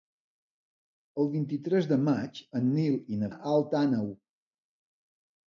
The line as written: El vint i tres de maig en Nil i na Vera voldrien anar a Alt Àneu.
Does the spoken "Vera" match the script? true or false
false